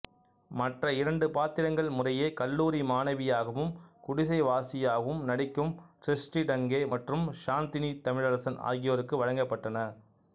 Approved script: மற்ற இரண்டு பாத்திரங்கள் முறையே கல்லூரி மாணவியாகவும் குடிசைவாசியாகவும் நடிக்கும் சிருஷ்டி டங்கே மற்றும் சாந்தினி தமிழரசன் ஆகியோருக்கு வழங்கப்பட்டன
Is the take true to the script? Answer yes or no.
yes